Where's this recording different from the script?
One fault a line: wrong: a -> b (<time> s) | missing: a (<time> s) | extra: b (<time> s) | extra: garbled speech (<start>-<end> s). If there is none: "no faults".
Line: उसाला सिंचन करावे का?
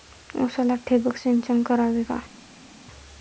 extra: ठिबक (0.9 s)